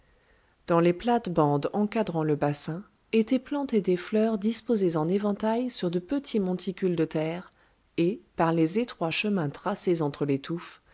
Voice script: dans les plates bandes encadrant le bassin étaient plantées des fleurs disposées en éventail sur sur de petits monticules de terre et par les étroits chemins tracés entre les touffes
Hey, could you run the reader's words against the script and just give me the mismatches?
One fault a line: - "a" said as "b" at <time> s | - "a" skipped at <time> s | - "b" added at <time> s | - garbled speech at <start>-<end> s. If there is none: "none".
- "sur" skipped at 5.9 s